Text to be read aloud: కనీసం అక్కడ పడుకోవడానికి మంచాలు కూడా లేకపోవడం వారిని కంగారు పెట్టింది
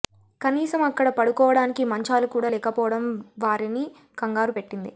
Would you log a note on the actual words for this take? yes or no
no